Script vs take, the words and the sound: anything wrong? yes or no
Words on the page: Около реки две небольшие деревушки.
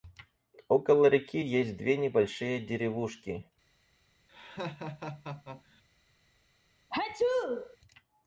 yes